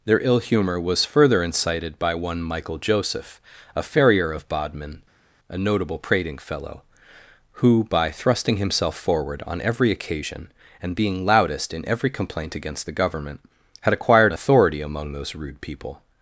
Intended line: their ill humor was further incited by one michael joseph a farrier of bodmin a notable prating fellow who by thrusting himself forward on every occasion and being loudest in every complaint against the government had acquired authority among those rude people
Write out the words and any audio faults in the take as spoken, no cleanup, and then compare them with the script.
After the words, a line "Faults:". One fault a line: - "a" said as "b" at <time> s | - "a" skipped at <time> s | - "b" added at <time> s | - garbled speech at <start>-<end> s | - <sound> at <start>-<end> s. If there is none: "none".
their ill humor was further incited by one michael joseph a farrier of bodmin a notable prating fellow who by thrusting himself forward on every occasion and being loudest in every complaint against the government had acquired authority among those rude people
Faults:
none